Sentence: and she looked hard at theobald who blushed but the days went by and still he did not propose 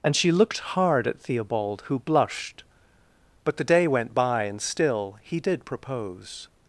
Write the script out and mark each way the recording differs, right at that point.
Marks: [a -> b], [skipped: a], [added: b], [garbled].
and she looked hard at theobald who blushed but the [days -> day] went by and still he did [skipped: not] propose